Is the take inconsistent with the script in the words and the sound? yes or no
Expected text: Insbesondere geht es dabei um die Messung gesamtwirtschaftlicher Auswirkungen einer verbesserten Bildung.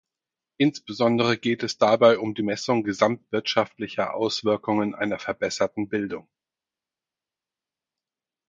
no